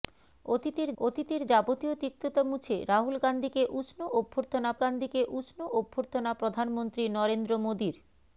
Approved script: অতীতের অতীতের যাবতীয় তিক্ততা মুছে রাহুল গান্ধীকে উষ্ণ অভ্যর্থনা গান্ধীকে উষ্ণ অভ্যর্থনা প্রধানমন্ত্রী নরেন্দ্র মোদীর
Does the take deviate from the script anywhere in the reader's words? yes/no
no